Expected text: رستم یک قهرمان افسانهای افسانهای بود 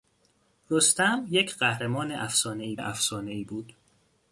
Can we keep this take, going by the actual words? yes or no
yes